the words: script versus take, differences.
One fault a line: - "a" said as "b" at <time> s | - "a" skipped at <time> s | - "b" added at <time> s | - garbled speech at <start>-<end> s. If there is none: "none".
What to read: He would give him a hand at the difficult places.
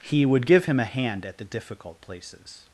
none